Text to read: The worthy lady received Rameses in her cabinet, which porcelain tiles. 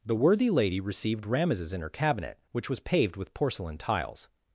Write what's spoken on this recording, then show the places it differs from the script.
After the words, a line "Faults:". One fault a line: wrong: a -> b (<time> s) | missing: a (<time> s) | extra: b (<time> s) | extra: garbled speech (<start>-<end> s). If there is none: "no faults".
The worthy lady received Rameses in her cabinet, which was paved with porcelain tiles.
Faults:
extra: was paved with (2.7 s)